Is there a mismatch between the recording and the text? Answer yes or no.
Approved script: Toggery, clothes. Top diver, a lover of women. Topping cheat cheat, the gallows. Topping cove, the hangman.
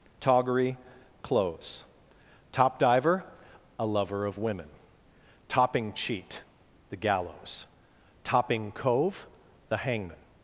yes